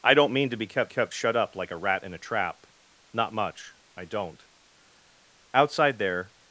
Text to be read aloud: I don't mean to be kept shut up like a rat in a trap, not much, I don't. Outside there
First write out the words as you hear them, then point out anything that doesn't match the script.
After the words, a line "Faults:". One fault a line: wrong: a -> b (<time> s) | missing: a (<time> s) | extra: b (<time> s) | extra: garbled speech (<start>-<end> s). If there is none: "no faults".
I don't mean to be kept kept shut up like a rat in a trap, not much, I don't. Outside there
Faults:
extra: kept (0.9 s)